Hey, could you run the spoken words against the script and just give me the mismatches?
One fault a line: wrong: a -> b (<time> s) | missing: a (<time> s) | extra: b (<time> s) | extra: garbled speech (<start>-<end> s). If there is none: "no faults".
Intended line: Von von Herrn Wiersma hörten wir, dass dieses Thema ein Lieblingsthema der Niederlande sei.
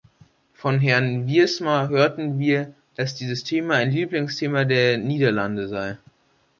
missing: von (0.8 s)